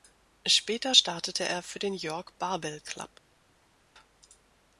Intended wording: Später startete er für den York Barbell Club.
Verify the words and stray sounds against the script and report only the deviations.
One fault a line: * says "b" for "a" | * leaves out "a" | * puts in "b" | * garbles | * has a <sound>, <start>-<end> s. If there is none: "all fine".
all fine